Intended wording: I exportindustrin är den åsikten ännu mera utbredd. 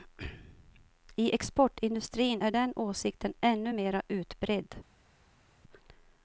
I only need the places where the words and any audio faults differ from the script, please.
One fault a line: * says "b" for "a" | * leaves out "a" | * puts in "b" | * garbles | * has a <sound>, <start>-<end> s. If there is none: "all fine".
all fine